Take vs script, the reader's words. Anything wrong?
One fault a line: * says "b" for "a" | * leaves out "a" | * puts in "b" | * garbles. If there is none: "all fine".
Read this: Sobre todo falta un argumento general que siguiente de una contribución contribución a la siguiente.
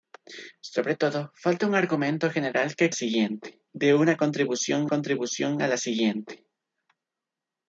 all fine